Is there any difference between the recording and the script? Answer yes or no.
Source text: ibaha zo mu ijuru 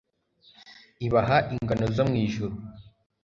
yes